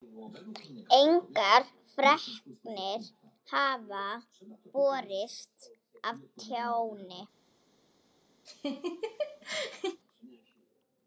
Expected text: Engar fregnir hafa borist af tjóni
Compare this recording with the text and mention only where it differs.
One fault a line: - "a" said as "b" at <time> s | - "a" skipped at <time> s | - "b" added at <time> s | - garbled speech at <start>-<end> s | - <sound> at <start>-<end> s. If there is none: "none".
- laugh at 8.5-10.0 s